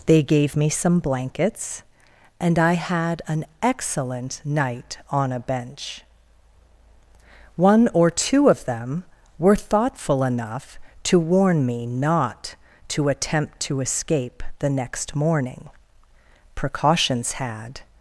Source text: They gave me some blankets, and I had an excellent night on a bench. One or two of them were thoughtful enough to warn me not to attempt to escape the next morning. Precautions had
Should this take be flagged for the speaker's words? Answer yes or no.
no